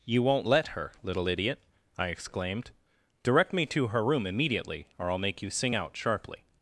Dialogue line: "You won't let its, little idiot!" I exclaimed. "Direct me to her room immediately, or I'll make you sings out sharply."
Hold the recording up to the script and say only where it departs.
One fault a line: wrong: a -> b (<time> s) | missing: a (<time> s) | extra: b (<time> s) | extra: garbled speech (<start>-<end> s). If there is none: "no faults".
wrong: its -> her (0.7 s)
wrong: sings -> sing (5.5 s)